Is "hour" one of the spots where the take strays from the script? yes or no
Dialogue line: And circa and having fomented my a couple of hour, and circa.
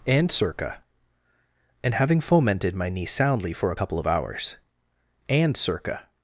yes